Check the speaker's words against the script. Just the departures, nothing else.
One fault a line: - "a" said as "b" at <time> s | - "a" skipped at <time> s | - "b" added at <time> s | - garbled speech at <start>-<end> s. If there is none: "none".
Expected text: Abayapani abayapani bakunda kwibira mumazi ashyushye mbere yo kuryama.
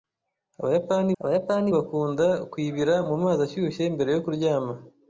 none